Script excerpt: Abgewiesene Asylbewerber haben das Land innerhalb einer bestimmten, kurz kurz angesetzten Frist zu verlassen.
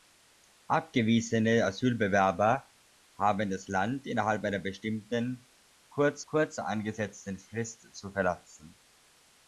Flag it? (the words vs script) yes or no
no